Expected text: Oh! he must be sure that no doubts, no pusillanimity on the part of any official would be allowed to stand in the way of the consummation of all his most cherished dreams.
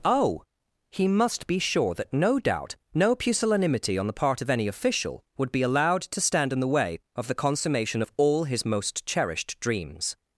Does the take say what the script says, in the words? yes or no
no